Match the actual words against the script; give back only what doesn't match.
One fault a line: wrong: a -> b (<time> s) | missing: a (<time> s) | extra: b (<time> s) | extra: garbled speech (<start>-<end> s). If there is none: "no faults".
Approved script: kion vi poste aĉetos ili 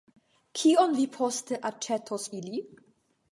no faults